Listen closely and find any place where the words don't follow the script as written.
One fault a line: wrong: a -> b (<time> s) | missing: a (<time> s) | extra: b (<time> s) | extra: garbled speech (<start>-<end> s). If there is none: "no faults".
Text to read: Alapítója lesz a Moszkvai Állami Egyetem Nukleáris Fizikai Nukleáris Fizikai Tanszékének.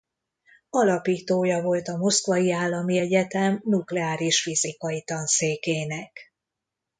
wrong: lesz -> volt (1.6 s)
missing: Nukleáris Fizikai (5.0 s)